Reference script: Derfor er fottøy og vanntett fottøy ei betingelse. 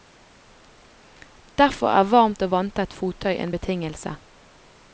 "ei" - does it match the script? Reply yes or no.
no